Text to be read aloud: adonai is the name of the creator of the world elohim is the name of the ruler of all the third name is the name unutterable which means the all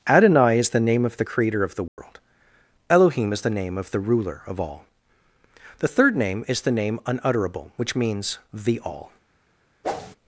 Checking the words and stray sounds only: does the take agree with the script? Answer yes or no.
no